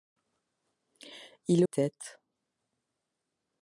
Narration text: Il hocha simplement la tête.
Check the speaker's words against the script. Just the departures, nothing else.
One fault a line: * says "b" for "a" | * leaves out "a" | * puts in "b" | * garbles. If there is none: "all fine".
* leaves out "hocha simplement la"